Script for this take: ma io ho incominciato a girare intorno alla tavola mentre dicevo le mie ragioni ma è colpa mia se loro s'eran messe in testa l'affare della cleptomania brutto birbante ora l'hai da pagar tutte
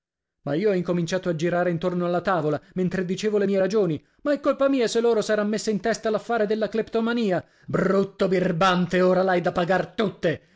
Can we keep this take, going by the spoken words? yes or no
yes